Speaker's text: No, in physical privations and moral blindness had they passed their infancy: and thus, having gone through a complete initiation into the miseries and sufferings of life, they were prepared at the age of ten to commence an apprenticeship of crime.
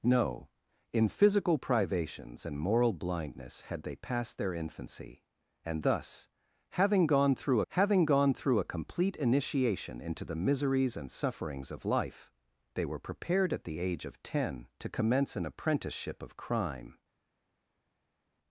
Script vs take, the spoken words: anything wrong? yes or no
yes